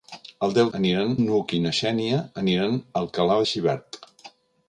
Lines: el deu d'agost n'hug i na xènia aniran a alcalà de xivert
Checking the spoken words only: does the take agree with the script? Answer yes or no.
no